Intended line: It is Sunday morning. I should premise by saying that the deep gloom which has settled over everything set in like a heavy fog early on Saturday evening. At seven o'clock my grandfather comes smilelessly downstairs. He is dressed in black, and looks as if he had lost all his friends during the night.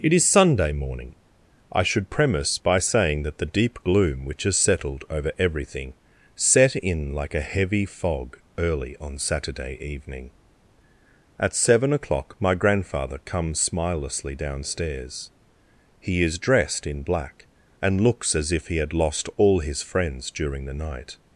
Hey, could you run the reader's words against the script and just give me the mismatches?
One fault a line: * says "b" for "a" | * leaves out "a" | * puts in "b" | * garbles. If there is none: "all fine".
all fine